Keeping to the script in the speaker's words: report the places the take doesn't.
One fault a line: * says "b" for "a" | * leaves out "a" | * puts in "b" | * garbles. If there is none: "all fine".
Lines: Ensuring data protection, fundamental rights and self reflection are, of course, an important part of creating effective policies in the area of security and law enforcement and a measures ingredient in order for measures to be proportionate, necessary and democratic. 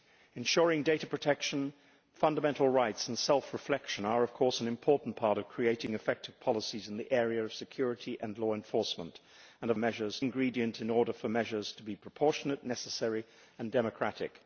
all fine